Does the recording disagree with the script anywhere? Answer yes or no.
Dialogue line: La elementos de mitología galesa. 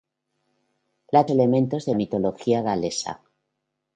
no